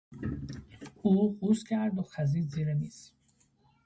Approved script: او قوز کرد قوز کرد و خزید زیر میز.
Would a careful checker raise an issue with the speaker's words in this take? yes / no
yes